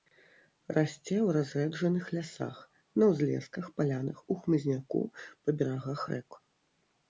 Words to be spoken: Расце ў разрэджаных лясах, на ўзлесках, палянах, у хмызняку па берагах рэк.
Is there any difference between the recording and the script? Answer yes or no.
no